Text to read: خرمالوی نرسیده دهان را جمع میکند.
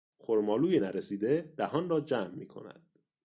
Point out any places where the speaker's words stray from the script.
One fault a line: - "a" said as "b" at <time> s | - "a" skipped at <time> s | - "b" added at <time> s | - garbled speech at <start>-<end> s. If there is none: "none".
none